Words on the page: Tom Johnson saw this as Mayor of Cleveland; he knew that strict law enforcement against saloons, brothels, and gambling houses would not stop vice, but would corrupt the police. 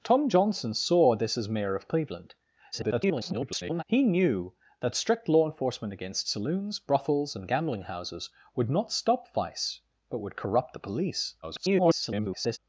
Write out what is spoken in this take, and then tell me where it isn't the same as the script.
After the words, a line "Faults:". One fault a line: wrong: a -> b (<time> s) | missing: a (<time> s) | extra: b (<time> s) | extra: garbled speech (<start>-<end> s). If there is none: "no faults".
Tom Johnson saw this as Mayor of Cleveland; [garbled] he knew that strict law enforcement against saloons, brothels, and gambling houses would not stop vice, but would corrupt the police. [garbled]
Faults:
extra: garbled speech (2.7-3.8 s)
extra: garbled speech (11.4-12.6 s)